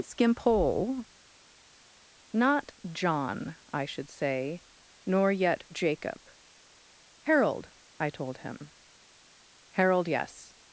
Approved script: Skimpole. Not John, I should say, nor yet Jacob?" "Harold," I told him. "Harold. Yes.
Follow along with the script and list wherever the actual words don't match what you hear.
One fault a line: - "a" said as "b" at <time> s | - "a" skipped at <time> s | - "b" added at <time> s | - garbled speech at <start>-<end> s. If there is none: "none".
none